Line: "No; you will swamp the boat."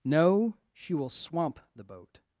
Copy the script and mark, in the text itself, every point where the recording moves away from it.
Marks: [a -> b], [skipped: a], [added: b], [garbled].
"No; [you -> she] will swamp the boat."